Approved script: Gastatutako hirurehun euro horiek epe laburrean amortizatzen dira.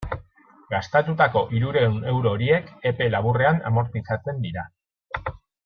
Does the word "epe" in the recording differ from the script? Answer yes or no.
no